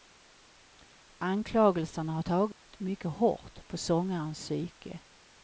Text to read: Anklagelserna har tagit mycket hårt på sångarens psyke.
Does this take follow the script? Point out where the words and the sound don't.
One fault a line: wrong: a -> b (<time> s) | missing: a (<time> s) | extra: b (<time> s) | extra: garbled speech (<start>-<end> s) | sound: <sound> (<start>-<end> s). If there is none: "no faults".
sound: dropout (2.5-2.7 s)